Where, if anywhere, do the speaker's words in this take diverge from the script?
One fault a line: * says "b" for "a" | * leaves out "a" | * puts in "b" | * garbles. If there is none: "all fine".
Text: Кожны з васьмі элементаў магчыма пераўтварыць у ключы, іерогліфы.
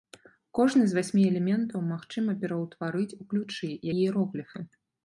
all fine